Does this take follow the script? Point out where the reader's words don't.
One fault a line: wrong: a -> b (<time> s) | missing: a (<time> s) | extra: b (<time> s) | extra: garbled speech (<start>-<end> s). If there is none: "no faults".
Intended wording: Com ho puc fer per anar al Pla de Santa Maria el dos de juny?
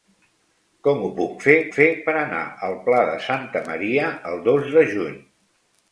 extra: fer (1.7 s)